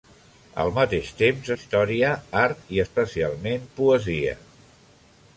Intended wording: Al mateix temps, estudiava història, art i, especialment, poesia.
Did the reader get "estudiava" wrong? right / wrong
wrong